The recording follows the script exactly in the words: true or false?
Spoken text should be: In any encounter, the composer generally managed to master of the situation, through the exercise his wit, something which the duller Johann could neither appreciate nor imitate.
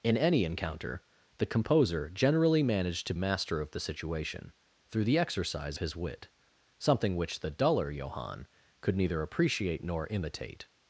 true